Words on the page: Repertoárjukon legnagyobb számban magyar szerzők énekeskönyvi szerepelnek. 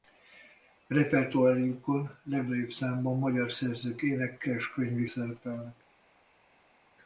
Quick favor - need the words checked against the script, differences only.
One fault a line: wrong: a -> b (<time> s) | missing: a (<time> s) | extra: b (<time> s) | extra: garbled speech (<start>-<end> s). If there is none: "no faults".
no faults